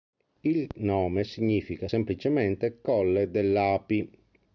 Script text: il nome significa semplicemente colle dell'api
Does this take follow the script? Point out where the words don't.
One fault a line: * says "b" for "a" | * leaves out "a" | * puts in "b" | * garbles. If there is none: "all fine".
all fine